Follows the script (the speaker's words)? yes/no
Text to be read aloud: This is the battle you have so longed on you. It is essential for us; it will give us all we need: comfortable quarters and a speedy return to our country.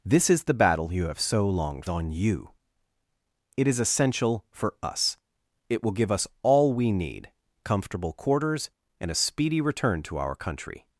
yes